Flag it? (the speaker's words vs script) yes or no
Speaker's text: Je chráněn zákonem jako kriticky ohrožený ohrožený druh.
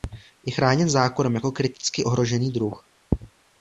yes